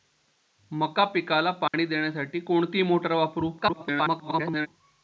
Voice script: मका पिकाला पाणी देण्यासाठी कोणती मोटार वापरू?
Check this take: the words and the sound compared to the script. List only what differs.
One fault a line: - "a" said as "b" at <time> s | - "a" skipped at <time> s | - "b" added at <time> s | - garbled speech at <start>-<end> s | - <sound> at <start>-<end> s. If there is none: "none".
- dropout at 1.7-1.7 s
- garbled speech at 3.6-4.7 s